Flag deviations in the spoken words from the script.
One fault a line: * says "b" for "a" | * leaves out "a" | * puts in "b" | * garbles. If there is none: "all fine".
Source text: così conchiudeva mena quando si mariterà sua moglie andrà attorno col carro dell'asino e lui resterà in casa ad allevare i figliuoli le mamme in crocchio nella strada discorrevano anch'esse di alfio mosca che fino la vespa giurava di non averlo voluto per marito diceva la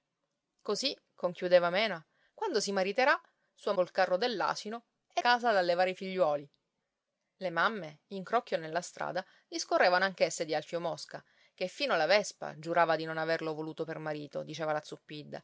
* leaves out "moglie andrà attorno"
* leaves out "lui resterà in"